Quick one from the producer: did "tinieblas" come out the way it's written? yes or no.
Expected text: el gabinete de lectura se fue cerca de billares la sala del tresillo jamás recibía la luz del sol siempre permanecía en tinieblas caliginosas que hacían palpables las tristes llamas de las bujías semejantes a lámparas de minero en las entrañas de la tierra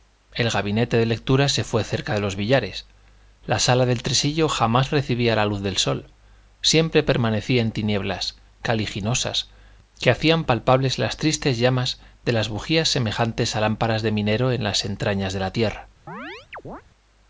yes